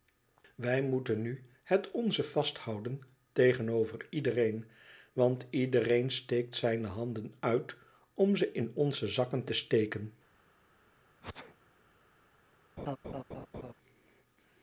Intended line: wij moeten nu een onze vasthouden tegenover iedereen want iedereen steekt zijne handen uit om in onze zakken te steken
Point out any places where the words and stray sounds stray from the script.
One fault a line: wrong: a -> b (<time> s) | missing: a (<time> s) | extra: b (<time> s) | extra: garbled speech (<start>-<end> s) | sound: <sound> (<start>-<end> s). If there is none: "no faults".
wrong: een -> het (1.6 s)
extra: ze (8.4 s)
sound: sneeze (11.2-11.6 s)
sound: laugh (12.8-13.7 s)